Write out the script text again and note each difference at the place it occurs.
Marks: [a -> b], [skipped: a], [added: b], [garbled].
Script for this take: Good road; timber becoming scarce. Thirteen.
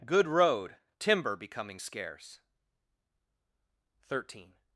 Good road; timber becoming scarce. Thirteen.